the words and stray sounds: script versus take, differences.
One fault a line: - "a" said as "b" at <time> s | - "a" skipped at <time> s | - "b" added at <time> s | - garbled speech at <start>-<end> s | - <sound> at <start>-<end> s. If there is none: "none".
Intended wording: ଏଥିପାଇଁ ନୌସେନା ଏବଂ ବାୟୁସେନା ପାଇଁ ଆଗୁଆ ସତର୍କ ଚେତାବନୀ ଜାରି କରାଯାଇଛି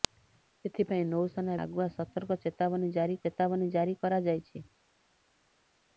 - "ଏବଂ ବାୟୁସେନା ପାଇଁ ଆଗୁଆ ସତର୍କ" said as "ଆଗୁଆ ସତର୍କ ଚେତାବନୀ ଜାରି" at 1.6 s